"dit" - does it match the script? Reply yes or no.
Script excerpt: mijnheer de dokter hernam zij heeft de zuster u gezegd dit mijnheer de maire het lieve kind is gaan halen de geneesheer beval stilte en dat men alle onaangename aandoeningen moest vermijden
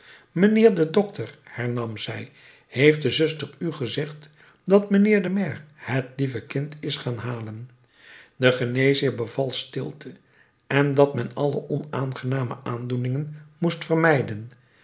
no